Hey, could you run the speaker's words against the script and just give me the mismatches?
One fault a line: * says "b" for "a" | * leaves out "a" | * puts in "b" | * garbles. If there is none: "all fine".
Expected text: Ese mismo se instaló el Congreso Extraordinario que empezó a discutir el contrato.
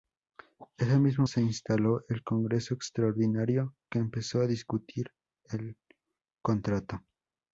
all fine